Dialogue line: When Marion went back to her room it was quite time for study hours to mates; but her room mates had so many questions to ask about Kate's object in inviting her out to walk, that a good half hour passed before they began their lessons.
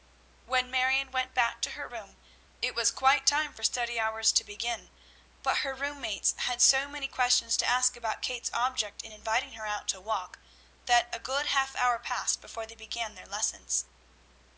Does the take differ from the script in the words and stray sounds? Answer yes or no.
yes